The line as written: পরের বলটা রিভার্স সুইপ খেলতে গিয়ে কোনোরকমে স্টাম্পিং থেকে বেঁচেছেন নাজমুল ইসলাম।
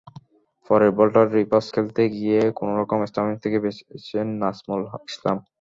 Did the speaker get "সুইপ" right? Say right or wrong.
wrong